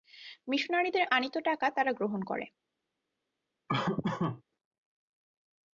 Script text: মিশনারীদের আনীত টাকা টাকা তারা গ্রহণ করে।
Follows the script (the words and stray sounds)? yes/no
no